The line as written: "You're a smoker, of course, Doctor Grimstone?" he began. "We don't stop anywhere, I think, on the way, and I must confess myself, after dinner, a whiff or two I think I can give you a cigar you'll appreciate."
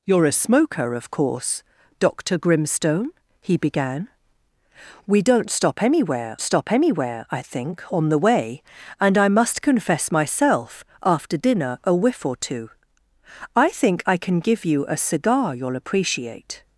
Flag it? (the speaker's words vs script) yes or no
yes